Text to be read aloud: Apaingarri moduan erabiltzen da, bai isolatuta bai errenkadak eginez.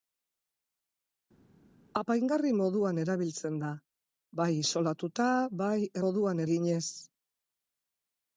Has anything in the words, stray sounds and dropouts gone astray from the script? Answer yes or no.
yes